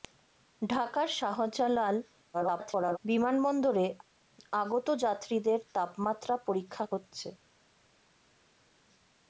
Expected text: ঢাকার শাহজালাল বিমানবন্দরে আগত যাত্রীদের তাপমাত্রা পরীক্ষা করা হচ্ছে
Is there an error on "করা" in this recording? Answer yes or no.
yes